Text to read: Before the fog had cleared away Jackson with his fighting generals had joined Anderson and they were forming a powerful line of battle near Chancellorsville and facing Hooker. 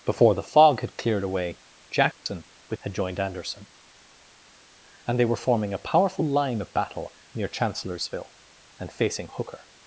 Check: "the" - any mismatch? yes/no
no